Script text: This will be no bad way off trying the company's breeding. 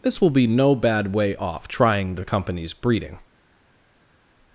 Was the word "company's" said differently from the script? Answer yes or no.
no